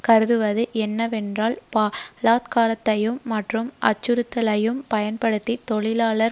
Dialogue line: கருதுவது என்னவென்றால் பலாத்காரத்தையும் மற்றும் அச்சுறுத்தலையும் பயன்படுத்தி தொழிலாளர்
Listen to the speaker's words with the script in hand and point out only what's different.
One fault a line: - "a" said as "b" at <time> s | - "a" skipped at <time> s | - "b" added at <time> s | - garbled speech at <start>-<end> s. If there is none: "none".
none